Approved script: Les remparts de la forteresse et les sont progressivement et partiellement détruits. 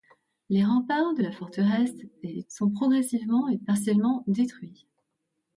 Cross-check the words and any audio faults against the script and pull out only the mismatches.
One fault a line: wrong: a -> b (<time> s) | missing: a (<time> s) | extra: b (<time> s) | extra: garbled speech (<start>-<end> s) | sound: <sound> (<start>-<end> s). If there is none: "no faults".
no faults